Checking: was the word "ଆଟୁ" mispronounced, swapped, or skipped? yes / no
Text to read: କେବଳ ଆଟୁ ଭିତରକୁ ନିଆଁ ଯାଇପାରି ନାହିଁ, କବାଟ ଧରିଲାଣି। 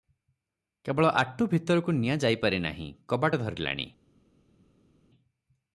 no